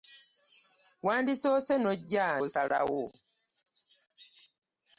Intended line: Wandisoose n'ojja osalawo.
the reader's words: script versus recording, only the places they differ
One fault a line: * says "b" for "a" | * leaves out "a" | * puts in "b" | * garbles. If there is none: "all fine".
all fine